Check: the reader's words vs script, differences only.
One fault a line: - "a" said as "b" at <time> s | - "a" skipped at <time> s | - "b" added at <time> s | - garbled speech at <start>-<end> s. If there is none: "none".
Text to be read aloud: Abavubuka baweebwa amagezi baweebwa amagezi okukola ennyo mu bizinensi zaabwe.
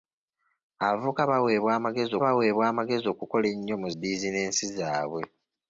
none